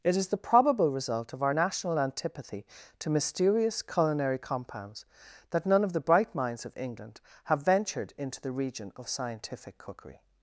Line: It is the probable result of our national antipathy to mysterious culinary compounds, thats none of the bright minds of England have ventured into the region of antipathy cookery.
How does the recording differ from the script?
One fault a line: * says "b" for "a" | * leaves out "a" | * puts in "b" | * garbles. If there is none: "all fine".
* says "that" for "thats"
* says "scientific" for "antipathy"